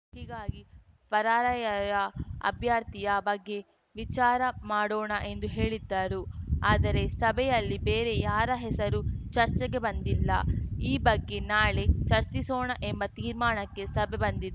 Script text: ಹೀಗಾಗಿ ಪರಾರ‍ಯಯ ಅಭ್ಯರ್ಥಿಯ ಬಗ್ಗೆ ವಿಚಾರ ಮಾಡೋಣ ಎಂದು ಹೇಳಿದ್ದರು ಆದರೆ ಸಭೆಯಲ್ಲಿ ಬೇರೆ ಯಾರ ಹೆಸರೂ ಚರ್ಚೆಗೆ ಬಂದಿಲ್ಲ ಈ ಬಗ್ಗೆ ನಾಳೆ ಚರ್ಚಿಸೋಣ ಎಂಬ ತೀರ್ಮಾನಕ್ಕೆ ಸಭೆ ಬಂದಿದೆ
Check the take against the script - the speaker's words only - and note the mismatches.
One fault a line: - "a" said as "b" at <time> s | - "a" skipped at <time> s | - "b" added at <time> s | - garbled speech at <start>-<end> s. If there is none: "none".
none